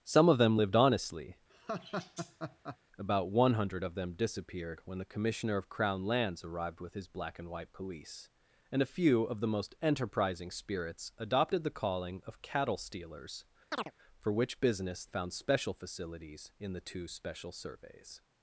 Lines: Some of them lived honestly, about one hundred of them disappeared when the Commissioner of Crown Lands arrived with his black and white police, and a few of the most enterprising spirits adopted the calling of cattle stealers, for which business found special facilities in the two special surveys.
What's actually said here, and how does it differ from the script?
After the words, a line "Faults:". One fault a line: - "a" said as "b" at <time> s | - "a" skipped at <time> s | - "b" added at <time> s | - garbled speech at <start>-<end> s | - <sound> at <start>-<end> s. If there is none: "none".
Some of them lived honestly, about one hundred of them disappeared when the Commissioner of Crown Lands arrived with his black and white police, and a few of the most enterprising spirits adopted the calling of cattle stealers, for which business found special facilities in the two special surveys.
Faults:
- laugh at 1.5-2.8 s
- chirp at 13.7-13.9 s